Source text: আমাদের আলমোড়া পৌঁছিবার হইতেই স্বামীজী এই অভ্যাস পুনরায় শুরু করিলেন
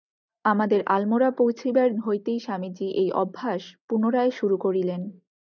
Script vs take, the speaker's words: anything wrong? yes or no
no